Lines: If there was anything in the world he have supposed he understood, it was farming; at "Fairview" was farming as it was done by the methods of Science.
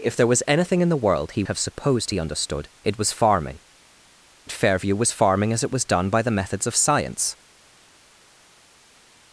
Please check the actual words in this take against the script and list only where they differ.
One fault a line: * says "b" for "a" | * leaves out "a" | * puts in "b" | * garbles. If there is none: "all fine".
all fine